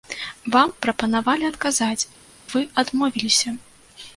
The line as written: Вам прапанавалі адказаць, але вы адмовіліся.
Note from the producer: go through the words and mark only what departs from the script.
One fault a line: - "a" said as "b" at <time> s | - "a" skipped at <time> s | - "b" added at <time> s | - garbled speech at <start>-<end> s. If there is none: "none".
- "але" skipped at 2.1 s